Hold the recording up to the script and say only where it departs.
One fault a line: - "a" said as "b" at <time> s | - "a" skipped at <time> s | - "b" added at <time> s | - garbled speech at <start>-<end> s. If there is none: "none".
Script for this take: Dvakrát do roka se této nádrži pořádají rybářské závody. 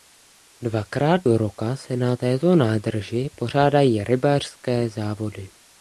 - "na" added at 2.0 s